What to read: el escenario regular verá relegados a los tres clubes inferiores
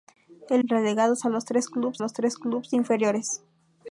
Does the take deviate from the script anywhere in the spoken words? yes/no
yes